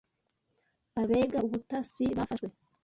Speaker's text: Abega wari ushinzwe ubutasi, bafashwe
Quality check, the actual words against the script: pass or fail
fail